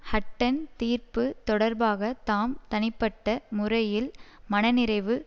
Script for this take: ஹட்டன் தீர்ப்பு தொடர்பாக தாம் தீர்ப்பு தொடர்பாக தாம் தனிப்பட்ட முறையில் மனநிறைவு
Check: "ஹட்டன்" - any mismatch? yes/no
no